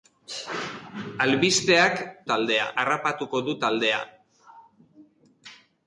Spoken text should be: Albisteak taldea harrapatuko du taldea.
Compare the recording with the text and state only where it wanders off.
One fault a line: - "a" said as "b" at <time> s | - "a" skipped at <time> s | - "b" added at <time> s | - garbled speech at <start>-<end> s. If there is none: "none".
none